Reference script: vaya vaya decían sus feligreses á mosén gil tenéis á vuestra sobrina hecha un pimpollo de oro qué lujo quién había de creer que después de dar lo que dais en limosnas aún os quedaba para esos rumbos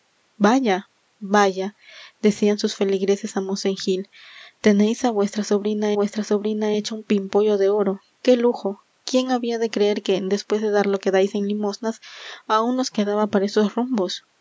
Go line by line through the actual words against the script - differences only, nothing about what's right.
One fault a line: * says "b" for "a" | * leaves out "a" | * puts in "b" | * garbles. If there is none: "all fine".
* puts in "vuestra sobrina"